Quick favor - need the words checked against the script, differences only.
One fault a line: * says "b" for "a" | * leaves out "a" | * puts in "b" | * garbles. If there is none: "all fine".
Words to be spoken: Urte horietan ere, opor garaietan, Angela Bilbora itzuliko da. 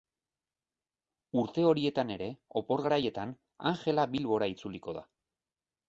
all fine